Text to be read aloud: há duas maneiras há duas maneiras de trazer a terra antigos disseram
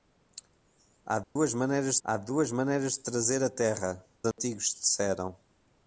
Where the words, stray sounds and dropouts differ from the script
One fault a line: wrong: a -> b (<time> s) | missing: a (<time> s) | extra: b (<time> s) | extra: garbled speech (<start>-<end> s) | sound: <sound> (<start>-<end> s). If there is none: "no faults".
sound: dropout (1.2-1.4 s)
sound: dropout (4.3-4.4 s)